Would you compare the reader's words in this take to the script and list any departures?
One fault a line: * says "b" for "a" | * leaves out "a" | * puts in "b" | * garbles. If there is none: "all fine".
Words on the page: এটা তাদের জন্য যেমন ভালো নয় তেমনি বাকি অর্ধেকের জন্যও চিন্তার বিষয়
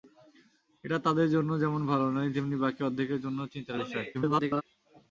* garbles